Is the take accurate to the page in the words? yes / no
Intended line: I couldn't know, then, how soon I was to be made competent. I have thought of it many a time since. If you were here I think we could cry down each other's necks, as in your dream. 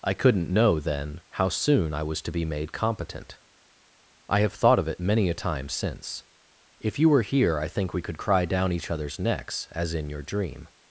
yes